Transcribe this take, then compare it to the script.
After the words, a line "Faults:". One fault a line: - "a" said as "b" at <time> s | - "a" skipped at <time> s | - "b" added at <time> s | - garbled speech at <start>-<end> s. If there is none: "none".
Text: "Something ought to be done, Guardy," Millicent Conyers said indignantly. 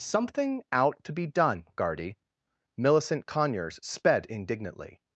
"Something out to be done, Guardy," Millicent Conyers sped indignantly.
Faults:
- "ought" said as "out" at 0.7 s
- "said" said as "sped" at 3.8 s